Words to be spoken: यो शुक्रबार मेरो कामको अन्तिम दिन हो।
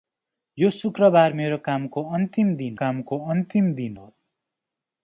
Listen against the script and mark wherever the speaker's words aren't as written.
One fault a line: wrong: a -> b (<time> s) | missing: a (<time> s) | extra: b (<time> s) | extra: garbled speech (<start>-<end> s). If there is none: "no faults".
extra: कामको अन्तिम दिन (2.8 s)